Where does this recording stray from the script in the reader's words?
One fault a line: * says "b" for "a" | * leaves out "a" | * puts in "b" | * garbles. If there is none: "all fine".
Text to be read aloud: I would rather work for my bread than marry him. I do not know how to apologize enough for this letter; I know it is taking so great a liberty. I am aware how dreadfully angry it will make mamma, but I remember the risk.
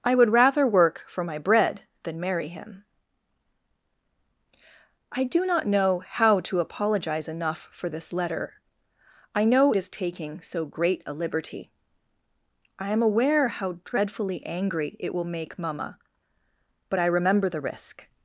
* leaves out "it"